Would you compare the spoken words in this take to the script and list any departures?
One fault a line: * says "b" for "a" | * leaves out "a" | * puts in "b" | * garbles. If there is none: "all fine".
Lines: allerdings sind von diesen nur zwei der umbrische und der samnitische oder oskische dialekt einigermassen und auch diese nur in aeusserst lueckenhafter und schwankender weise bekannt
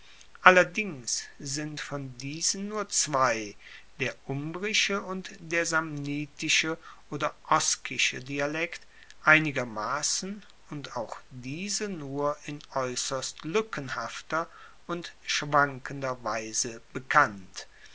all fine